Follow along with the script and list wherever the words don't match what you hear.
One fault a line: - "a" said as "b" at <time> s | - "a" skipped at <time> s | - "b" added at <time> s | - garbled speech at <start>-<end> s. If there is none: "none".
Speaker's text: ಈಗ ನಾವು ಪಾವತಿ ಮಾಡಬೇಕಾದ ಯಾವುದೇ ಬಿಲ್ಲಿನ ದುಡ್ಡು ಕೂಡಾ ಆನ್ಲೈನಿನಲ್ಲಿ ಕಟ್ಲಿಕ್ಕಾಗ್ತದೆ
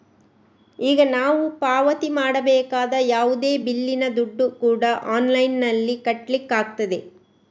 none